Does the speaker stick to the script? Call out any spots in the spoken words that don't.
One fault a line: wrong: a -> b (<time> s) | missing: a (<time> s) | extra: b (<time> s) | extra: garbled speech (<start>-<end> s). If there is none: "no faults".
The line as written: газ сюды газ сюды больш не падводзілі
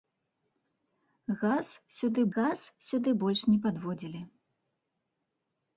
no faults